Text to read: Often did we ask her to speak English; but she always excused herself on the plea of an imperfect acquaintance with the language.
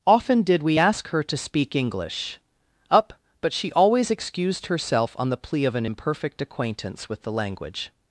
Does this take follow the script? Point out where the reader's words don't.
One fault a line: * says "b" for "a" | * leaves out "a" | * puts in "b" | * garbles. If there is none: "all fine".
* puts in "up"